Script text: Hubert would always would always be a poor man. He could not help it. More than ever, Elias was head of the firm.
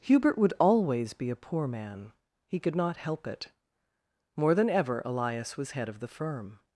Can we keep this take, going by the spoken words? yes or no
no